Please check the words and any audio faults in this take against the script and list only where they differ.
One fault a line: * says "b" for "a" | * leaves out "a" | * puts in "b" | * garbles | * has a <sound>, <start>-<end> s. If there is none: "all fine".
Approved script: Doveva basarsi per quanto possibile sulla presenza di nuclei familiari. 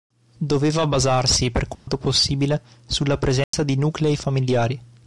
* has a dropout, 1.7-1.9 s
* has a dropout, 3.4-3.5 s